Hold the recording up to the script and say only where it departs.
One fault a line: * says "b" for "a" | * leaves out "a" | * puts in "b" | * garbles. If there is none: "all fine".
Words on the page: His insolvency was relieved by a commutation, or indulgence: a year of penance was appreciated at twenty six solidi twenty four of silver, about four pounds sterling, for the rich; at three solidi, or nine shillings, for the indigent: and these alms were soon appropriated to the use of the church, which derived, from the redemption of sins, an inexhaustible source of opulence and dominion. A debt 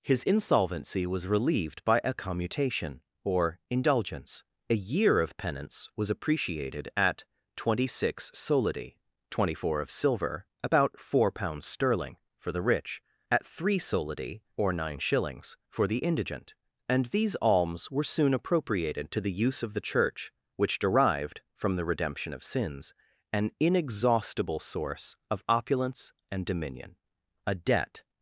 all fine